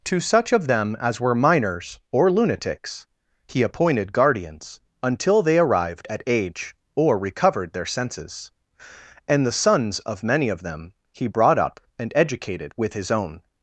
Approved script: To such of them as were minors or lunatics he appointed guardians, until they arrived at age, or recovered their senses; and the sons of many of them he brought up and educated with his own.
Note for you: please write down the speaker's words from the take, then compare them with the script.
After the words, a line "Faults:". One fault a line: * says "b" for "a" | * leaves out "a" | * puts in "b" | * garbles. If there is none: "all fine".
To such of them as were minors or lunatics he appointed guardians, until they arrived at age, or recovered their senses; and the sons of many of them he brought up and educated with his own.
Faults:
all fine